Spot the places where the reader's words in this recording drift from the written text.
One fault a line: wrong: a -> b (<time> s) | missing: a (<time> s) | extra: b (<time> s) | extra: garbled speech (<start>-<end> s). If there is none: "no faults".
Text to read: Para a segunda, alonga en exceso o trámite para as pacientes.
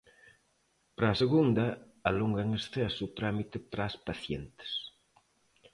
no faults